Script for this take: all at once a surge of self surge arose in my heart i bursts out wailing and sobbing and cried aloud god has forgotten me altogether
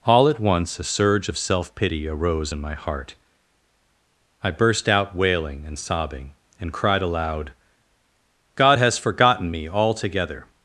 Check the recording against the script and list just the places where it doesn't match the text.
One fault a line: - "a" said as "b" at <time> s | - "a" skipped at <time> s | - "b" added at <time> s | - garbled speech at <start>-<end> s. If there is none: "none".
- "surge" said as "pity" at 1.8 s
- "bursts" said as "burst" at 4.5 s